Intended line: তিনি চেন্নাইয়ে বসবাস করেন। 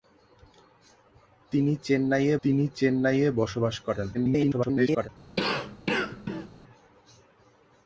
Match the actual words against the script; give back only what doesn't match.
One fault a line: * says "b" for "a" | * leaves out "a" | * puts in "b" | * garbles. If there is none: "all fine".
* puts in "তিনি চেন্নাইয়ে"
* garbles